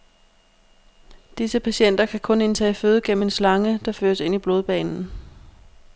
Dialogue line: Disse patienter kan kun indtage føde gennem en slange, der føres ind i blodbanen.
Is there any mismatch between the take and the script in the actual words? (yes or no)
no